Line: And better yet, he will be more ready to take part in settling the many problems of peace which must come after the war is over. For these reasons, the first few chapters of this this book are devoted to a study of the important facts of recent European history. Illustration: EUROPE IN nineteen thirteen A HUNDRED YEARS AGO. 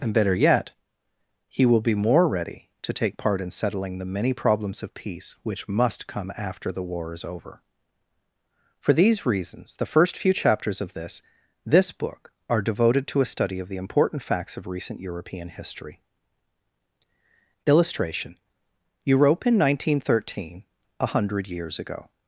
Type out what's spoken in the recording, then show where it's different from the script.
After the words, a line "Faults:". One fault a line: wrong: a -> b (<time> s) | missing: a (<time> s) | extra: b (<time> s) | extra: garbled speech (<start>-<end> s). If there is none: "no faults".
And better yet, he will be more ready to take part in settling the many problems of peace which must come after the war is over. For these reasons, the first few chapters of this this book are devoted to a study of the important facts of recent European history. Illustration: EUROPE IN nineteen thirteen A HUNDRED YEARS AGO.
Faults:
no faults